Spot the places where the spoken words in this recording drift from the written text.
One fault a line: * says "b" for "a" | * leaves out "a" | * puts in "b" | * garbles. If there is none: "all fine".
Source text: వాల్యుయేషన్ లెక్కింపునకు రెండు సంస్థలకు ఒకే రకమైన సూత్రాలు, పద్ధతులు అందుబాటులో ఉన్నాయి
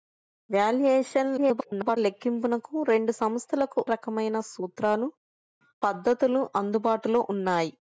* garbles
* leaves out "ఒకే"